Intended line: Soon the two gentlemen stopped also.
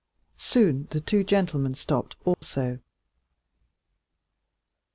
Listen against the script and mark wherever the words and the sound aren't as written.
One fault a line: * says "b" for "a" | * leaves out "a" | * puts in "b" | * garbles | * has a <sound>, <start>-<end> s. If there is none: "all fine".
* has a dropout, 2.3-2.4 s